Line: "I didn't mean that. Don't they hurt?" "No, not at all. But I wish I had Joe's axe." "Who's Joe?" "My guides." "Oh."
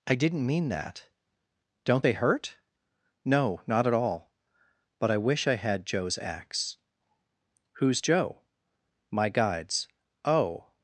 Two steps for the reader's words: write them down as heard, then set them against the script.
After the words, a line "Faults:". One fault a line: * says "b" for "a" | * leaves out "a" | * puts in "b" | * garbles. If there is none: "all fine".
"I didn't mean that. Don't they hurt?" "No, not at all. But I wish I had Joe's axe." "Who's Joe?" "My guides." "Oh."
Faults:
all fine